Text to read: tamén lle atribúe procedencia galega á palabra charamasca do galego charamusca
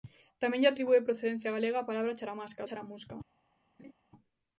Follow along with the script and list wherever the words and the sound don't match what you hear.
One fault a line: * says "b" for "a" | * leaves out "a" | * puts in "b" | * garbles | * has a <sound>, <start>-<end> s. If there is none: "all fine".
* leaves out "do galego"
* has a laugh, 3.8-3.9 s